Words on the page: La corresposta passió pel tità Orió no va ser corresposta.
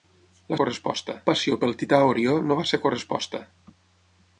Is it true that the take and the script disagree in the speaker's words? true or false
false